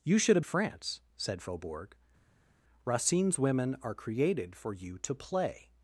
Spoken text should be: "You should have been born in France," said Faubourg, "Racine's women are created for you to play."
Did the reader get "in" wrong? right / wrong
wrong